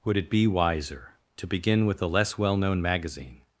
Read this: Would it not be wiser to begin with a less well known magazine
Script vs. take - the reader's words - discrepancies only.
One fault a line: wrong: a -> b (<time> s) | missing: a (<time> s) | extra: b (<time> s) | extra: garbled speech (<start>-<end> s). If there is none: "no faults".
missing: not (0.3 s)